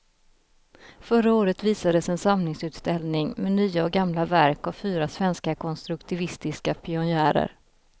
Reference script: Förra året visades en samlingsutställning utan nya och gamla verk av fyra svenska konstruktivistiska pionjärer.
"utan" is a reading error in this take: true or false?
true